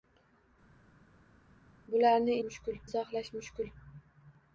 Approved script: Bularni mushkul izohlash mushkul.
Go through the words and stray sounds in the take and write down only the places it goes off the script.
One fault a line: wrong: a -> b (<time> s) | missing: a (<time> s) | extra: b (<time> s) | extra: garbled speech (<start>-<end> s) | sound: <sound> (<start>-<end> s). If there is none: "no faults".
no faults